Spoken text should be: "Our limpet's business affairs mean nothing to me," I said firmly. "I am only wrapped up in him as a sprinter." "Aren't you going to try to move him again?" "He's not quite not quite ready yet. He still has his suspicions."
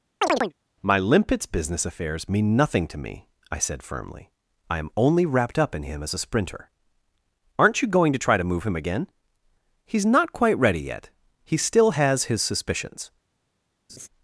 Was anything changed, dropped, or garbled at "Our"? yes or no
yes